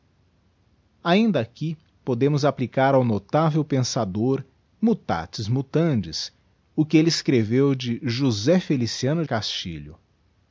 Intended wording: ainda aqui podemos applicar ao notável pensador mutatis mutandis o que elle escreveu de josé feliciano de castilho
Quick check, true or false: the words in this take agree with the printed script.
false